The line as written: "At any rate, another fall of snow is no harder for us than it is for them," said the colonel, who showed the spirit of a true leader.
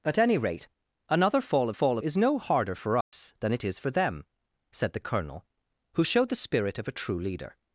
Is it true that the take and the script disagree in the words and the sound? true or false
true